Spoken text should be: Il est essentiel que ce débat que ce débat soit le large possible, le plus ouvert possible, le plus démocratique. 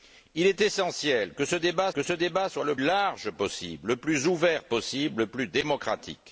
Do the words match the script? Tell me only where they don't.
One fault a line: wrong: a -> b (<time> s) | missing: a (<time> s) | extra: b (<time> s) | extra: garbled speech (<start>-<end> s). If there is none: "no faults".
no faults